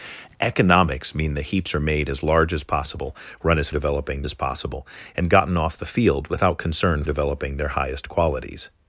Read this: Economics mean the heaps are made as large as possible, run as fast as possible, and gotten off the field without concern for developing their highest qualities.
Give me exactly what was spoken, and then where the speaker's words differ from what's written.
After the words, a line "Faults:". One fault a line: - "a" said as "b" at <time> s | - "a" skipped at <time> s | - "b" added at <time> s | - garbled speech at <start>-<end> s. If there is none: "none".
Economics mean the heaps are made as large as possible, run as developing as possible, and gotten off the field without concern developing their highest qualities.
Faults:
- "fast" said as "developing" at 3.7 s
- "for" skipped at 7.0 s